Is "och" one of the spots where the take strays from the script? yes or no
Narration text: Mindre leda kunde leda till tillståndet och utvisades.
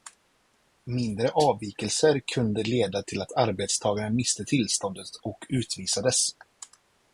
no